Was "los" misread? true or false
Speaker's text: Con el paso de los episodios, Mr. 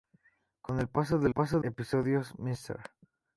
true